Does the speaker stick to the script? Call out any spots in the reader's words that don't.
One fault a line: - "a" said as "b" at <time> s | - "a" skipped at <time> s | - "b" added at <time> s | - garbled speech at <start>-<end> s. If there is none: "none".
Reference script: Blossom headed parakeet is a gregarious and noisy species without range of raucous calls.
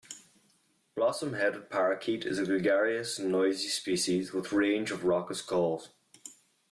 - "without" said as "with" at 4.3 s